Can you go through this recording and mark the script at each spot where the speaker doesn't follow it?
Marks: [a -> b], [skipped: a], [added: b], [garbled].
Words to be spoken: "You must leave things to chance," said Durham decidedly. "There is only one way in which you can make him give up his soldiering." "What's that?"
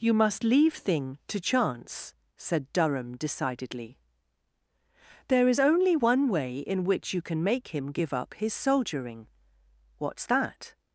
"You must leave [things -> thing] to chance," said Durham decidedly. "There is only one way in which you can make him give up his soldiering." "What's that?"